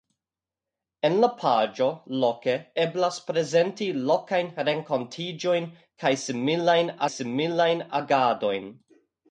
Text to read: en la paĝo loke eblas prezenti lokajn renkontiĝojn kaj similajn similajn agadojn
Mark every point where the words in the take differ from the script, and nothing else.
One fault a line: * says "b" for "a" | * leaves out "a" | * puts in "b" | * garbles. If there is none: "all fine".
all fine